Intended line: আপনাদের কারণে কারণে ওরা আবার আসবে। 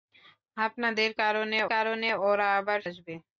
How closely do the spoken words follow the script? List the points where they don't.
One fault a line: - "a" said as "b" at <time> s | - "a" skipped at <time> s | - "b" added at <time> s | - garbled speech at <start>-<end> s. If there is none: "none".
none